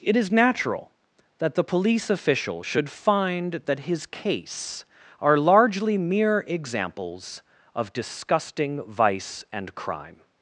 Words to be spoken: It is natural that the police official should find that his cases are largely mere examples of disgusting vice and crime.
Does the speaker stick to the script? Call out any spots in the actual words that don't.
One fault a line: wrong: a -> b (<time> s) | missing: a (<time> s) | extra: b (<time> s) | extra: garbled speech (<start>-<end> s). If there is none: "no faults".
wrong: cases -> case (4.0 s)